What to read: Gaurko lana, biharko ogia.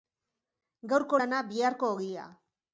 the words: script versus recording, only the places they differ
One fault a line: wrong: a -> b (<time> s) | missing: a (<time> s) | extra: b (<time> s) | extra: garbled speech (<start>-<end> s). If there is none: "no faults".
no faults